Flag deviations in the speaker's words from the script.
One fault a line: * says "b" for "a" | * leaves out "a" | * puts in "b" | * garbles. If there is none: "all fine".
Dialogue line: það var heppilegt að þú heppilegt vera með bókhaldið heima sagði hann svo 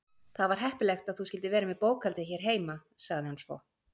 * says "skyldir" for "heppilegt"
* puts in "hér"